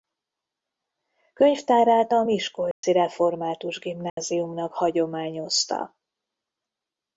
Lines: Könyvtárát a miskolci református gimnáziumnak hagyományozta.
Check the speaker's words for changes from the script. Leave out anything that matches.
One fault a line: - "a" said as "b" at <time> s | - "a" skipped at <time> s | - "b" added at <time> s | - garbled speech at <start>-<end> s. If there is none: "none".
none